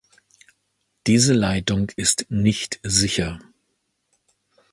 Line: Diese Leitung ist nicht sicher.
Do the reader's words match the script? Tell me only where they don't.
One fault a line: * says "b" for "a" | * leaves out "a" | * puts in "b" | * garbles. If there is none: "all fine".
all fine